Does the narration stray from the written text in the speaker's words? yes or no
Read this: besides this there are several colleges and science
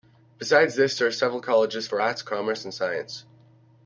yes